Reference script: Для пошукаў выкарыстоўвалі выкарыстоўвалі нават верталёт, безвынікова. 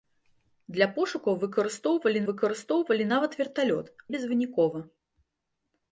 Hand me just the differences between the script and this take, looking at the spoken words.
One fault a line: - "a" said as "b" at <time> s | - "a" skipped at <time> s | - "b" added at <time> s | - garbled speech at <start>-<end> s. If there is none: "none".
none